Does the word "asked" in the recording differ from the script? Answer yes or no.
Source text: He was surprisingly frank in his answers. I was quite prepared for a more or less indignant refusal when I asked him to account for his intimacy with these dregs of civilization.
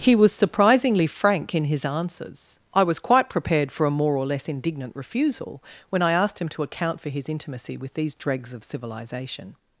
no